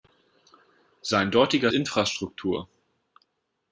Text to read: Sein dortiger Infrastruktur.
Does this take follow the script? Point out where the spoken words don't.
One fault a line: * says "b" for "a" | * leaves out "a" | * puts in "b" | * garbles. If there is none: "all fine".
all fine